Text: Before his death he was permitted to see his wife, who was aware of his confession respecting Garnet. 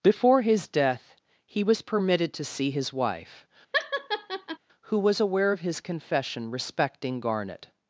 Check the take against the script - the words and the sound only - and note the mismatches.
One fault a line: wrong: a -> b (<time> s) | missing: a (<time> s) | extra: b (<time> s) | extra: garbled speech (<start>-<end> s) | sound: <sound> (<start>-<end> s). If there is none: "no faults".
sound: laugh (3.7-4.6 s)